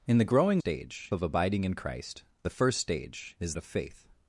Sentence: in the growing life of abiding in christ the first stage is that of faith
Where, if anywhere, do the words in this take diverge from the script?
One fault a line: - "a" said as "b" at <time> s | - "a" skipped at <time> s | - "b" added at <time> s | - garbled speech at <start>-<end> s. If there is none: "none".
- "life" said as "stage" at 0.6 s
- "that" skipped at 3.5 s